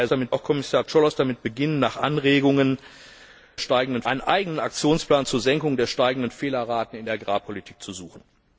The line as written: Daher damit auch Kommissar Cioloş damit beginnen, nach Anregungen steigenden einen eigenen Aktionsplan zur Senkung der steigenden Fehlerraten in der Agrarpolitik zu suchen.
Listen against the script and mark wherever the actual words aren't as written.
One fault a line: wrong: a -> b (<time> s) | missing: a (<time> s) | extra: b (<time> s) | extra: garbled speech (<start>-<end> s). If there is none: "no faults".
no faults